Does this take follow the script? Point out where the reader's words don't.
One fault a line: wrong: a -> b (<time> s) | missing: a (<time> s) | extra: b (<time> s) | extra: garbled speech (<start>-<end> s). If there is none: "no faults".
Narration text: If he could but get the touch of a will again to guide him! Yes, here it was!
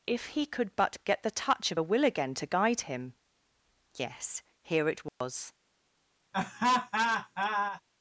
no faults